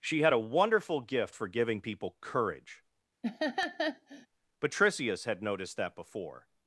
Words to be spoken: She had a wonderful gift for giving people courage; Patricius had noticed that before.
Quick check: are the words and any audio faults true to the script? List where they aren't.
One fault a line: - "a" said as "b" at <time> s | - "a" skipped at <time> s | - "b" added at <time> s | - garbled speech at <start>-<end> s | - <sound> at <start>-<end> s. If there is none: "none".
- laugh at 3.2-4.3 s